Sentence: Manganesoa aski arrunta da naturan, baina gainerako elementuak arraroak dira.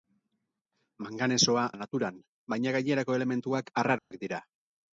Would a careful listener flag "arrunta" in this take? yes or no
yes